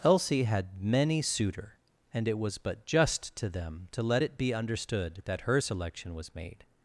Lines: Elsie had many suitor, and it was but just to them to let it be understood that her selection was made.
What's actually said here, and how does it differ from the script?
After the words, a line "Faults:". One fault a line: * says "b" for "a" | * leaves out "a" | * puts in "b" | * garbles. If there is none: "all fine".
Elsie had many suitor, and it was but just to them to let it be understood that her selection was made.
Faults:
all fine